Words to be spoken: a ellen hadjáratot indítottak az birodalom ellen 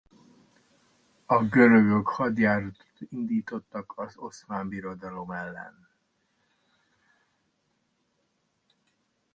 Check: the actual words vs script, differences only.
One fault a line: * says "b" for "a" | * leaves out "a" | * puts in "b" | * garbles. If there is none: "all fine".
* says "görögök" for "ellen"
* puts in "oszmán"